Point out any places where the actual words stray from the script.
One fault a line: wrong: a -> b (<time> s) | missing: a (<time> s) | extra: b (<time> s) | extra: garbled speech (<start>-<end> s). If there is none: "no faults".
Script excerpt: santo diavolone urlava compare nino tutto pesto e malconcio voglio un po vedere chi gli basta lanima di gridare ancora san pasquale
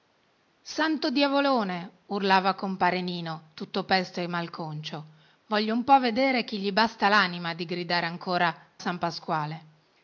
no faults